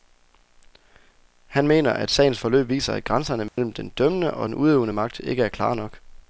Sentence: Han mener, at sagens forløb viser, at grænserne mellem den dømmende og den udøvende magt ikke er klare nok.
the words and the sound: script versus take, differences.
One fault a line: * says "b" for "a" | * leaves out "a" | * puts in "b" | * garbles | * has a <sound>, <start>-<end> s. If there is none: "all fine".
* has a dropout, 3.5-3.6 s